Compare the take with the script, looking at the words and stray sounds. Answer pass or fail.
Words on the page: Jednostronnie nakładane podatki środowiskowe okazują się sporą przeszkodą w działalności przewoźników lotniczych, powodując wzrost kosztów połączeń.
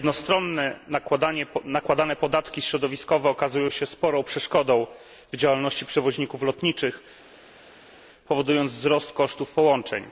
pass